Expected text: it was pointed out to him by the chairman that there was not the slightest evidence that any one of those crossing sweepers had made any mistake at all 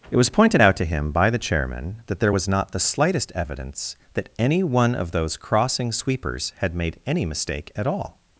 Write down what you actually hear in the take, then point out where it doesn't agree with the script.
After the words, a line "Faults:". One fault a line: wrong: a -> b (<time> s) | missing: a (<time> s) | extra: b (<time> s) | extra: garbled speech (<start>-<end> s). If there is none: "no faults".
it was pointed out to him by the chairman that there was not the slightest evidence that any one of those crossing sweepers had made any mistake at all
Faults:
no faults